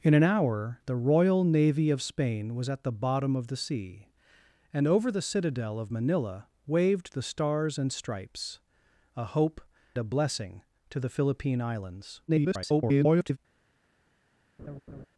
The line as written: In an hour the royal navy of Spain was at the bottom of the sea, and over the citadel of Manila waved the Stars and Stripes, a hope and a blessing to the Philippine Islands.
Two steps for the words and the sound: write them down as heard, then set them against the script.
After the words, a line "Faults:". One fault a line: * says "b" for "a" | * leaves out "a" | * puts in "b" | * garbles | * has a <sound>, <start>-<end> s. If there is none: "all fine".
In an hour the royal navy of Spain was at the bottom of the sea, and over the citadel of Manila waved the Stars and Stripes, a hope a blessing to the Philippine Islands. [garbled]
Faults:
* leaves out "and"
* garbles
* has a laugh, 14.6-15.1 s